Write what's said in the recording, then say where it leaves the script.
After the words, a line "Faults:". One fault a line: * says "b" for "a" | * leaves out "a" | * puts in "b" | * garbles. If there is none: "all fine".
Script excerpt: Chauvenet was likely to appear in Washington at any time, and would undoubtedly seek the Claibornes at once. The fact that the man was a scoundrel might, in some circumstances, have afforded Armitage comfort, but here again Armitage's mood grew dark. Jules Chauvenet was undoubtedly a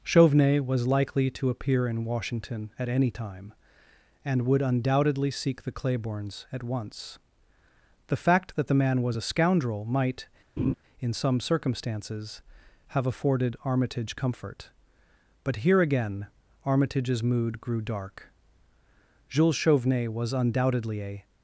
Chauvenet was likely to appear in Washington at any time, and would undoubtedly seek the Claibornes at once. The fact that the man was a scoundrel might, in some circumstances, have afforded Armitage comfort, but here again Armitage's mood grew dark. Jules Chauvenet was undoubtedly a
Faults:
all fine